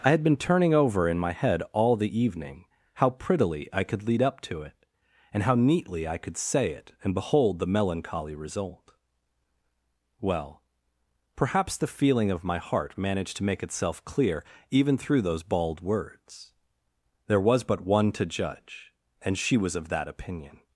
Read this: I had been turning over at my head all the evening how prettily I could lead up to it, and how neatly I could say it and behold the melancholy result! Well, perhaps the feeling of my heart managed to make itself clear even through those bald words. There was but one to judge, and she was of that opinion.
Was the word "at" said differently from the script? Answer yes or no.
yes